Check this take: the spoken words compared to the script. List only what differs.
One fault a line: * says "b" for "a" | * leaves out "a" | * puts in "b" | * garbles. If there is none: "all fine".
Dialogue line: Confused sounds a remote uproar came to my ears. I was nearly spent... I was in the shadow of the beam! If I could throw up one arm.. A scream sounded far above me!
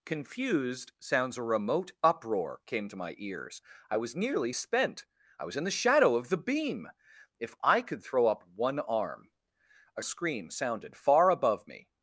all fine